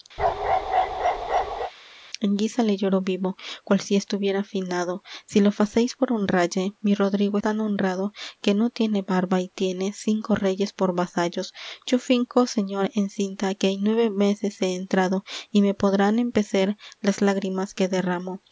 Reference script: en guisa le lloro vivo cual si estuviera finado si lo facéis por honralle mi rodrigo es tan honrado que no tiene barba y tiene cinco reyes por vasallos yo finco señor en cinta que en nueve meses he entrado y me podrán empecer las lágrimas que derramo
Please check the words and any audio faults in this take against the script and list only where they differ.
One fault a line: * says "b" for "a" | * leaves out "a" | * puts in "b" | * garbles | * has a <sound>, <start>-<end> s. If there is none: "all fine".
* has a bark, 0.2-1.7 s
* leaves out "es"